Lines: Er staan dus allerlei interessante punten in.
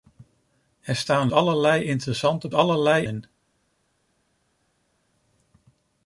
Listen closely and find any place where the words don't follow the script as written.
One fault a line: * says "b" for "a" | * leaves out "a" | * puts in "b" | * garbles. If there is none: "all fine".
* leaves out "dus"
* says "allerlei" for "punten"